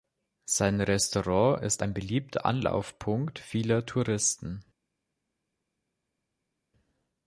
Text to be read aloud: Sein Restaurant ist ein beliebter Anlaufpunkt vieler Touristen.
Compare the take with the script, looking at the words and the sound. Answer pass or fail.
pass